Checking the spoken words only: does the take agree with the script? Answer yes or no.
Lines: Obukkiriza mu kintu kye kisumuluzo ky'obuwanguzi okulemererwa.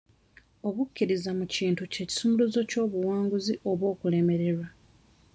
no